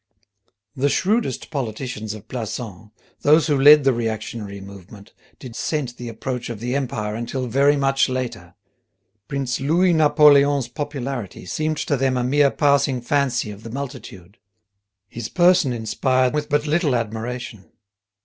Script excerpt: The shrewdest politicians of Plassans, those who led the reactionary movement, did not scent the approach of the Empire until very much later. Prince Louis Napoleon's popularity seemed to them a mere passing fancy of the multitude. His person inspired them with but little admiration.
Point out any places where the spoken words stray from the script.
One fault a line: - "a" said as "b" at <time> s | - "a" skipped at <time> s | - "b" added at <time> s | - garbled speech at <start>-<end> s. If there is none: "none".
- "not" skipped at 5.5 s
- "them" skipped at 16.4 s